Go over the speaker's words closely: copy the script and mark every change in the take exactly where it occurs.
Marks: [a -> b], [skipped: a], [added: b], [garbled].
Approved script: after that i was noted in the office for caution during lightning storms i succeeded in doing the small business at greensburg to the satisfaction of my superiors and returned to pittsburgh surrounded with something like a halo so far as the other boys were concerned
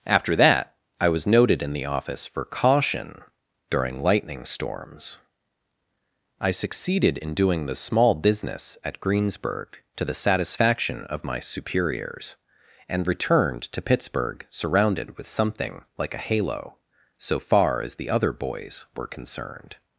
after that i was noted in the office for caution during lightning storms i succeeded in doing the small business at greensburg to the satisfaction of my superiors and returned to pittsburgh surrounded with something like a halo so far as the other boys were concerned